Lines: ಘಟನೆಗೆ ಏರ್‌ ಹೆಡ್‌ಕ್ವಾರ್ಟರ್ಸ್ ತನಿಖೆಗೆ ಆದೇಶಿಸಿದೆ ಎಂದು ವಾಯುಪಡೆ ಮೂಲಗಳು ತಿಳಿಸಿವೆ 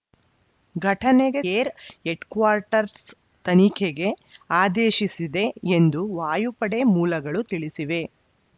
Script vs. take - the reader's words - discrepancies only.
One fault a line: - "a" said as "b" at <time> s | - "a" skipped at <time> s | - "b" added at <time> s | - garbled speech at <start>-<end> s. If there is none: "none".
none